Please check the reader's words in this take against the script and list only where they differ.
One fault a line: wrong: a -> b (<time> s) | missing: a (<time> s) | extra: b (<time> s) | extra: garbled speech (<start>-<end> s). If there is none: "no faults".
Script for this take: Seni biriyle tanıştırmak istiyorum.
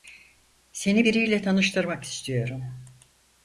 no faults